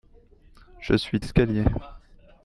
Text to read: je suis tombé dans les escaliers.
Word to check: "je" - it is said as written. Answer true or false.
true